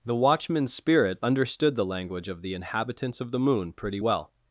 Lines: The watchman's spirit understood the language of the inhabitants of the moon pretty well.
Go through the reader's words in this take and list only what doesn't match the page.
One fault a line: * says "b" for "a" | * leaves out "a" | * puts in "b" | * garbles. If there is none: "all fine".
all fine